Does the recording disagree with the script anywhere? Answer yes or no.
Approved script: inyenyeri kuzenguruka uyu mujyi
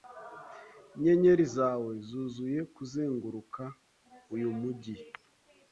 yes